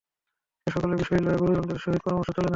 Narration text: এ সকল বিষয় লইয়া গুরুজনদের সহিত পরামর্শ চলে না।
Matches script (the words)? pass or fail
pass